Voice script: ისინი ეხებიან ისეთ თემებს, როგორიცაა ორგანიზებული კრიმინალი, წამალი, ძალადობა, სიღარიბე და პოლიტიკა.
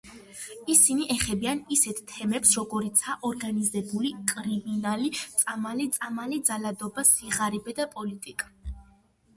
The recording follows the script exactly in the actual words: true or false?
false